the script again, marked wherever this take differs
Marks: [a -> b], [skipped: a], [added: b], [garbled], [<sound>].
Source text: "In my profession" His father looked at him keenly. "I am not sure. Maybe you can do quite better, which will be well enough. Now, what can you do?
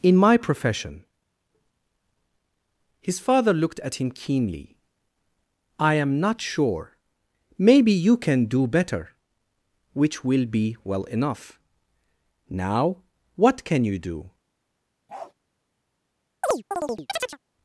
"In my profession" His father looked at him keenly. "I am not sure. Maybe you can do [skipped: quite] better, which will be well enough. Now, what can you do? [bark] [chirp]